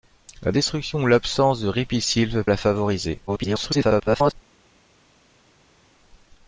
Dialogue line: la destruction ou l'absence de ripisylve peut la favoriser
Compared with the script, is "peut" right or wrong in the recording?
wrong